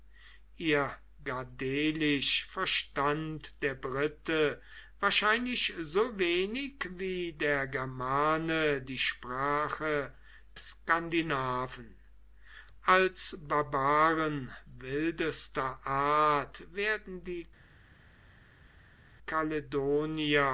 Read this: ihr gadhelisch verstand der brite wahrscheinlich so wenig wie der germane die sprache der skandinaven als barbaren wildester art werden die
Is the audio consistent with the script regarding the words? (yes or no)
no